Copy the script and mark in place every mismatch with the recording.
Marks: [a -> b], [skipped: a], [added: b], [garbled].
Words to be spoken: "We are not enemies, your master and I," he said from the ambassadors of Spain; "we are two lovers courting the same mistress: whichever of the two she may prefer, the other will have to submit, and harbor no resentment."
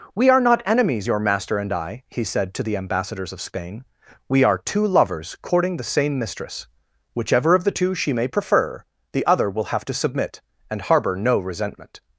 "We are not enemies, your master and I," he said [from -> to] the ambassadors of Spain; "we are two lovers courting the same mistress: whichever of the two she may prefer, the other will have to submit, and harbor no resentment."